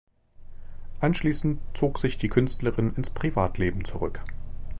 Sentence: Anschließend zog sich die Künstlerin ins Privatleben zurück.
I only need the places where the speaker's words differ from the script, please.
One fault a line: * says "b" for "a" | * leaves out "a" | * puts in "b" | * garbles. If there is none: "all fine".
all fine